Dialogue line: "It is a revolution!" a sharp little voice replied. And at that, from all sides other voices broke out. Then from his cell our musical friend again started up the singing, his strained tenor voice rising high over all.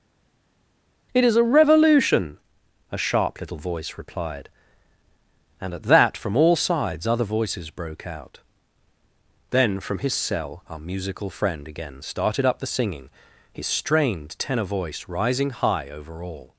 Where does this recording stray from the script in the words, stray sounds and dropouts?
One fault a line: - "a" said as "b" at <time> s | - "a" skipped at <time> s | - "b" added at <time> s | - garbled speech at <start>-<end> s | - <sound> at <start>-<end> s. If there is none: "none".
none